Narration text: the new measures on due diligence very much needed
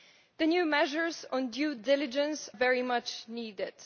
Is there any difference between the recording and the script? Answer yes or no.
no